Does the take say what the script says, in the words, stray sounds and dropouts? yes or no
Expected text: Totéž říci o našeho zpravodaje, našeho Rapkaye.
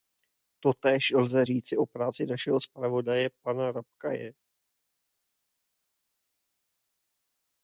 no